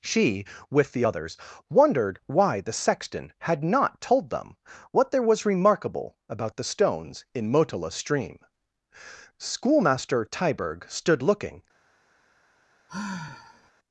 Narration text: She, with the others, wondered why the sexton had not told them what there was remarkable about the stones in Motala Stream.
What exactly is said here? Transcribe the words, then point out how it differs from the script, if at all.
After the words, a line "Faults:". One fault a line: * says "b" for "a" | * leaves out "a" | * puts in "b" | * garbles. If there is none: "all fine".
She, with the others, wondered why the sexton had not told them what there was remarkable about the stones in Motala Stream. Schoolmaster Tyberg stood looking
Faults:
* puts in "Schoolmaster Tyberg stood looking"